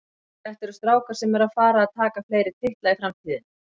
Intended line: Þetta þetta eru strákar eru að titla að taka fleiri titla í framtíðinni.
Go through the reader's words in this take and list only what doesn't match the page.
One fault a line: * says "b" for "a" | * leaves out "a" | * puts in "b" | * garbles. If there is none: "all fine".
* leaves out "þetta"
* puts in "sem"
* says "fara" for "titla"